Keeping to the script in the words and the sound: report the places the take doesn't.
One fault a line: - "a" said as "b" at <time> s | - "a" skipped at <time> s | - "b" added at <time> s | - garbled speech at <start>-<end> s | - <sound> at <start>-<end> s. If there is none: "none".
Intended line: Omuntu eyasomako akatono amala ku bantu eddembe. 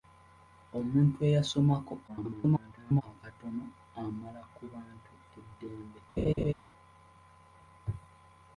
- garbled speech at 2.1-3.0 s
- laugh at 6.2-6.5 s